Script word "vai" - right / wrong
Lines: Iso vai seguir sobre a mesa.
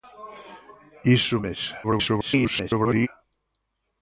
wrong